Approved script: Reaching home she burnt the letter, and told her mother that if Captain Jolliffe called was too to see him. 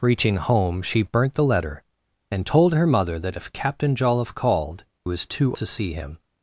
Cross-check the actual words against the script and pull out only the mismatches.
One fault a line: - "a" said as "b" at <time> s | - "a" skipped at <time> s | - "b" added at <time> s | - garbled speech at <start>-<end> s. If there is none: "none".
none